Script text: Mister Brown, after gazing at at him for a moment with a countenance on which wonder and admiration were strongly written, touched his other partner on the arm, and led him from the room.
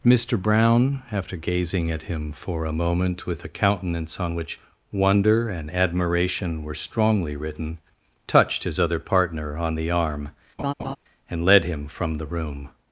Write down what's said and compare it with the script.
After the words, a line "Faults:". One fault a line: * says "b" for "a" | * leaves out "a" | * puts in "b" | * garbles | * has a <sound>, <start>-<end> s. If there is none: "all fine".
Mister Brown, after gazing at him for a moment with a countenance on which wonder and admiration were strongly written, touched his other partner on the arm, and led him from the room.
Faults:
* leaves out "at"
* has a laugh, 10.6-11.0 s